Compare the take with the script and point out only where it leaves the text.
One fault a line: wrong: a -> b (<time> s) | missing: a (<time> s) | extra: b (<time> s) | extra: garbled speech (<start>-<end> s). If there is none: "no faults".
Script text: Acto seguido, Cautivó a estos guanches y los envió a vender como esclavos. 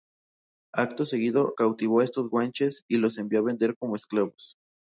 no faults